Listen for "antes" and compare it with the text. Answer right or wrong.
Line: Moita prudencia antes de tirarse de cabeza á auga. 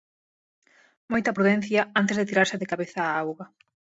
right